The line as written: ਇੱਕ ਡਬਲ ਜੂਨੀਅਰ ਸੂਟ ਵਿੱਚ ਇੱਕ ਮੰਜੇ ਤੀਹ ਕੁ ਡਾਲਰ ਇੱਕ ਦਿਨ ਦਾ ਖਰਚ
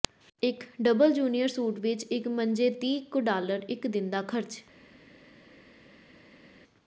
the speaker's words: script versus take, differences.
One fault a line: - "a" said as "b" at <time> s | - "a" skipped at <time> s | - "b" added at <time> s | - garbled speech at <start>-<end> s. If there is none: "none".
none